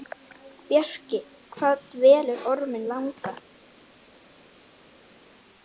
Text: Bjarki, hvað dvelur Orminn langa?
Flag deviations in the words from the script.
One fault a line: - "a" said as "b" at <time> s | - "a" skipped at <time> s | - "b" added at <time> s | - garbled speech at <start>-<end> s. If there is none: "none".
none